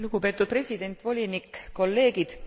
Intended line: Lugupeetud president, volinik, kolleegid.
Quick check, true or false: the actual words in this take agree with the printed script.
true